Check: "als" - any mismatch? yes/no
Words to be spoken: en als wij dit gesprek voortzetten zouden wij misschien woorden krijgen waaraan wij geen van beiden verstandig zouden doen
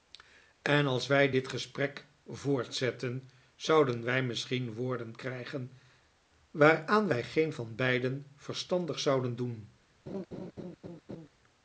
no